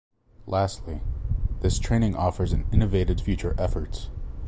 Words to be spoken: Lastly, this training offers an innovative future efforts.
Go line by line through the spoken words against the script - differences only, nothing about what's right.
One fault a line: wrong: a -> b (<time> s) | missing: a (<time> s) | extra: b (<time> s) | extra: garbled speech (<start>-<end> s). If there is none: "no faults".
no faults